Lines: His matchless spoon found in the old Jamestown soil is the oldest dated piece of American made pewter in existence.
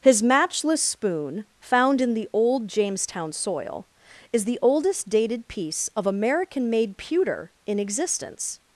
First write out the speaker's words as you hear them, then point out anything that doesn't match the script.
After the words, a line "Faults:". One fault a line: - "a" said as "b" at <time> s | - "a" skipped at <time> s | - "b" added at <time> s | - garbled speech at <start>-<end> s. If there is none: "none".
His matchless spoon found in the old Jamestown soil is the oldest dated piece of American made pewter in existence.
Faults:
none